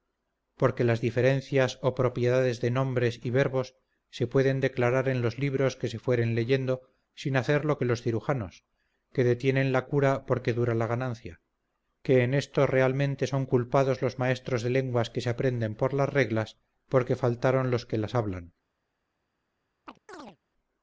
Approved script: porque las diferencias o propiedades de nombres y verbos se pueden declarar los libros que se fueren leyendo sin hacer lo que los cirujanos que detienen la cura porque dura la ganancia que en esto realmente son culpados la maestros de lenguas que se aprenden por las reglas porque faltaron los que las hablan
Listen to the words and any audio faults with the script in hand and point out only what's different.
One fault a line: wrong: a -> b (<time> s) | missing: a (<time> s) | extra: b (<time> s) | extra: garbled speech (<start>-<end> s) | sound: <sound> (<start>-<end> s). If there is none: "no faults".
extra: en (5.1 s)
wrong: la -> los (14.0 s)
sound: chirp (19.9-20.4 s)